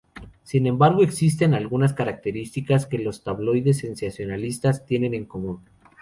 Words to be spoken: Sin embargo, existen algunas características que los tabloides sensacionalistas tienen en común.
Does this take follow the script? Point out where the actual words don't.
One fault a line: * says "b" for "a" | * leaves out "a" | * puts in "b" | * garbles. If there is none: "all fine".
all fine